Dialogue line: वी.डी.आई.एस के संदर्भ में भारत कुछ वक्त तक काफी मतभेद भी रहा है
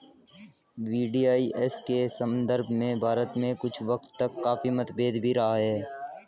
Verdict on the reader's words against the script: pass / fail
fail